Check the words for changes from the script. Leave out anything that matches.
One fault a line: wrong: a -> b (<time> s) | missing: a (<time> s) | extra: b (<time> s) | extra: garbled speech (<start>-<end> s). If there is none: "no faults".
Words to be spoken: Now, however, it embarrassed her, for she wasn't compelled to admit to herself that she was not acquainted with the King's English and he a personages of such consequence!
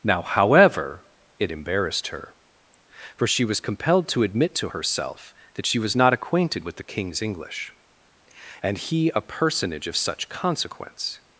wrong: wasn't -> was (3.5 s)
wrong: personages -> personage (9.2 s)